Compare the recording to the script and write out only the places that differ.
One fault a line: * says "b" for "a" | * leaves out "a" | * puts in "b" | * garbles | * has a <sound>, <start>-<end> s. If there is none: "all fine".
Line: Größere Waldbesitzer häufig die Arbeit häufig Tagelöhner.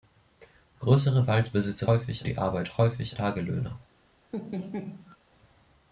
* has a laugh, 4.3-5.2 s